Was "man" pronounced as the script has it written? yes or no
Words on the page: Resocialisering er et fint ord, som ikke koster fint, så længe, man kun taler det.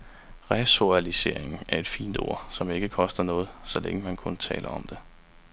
yes